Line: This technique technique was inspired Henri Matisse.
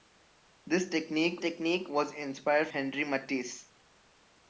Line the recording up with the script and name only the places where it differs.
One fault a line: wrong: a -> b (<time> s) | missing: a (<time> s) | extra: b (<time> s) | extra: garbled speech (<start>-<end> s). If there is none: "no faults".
no faults